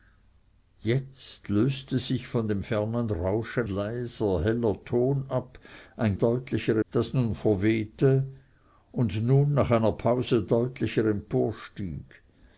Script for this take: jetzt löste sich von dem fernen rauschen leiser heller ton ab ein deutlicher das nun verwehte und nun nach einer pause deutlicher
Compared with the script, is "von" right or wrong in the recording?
right